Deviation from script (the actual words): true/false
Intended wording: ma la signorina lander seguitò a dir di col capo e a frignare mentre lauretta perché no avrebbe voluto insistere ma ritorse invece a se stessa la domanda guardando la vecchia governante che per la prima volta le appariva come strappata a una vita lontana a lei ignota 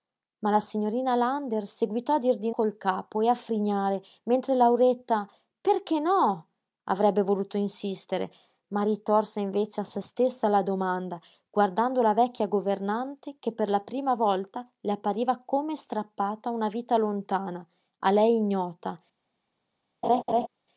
false